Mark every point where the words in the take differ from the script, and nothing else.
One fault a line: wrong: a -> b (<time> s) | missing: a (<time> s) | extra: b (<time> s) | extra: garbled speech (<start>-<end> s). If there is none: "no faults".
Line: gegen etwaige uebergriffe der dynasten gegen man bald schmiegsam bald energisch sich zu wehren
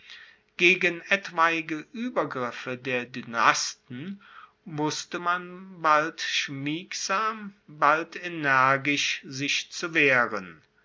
wrong: gegen -> wusste (4.6 s)